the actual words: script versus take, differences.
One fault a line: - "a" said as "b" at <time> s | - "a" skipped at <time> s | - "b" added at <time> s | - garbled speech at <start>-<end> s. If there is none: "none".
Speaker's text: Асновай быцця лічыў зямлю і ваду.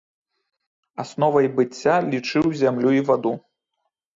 none